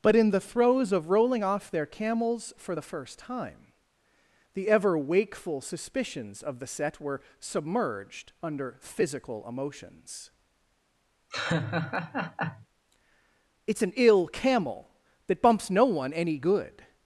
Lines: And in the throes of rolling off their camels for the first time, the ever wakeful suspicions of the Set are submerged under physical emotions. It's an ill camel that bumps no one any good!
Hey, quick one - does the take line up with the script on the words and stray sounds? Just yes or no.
no